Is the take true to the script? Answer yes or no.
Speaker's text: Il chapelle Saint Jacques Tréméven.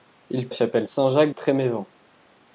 yes